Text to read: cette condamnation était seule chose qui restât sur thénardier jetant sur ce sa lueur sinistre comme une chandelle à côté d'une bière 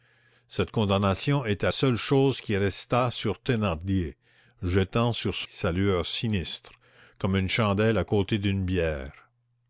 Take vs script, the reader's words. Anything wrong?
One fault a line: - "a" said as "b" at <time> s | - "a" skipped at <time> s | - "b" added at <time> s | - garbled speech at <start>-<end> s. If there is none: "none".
none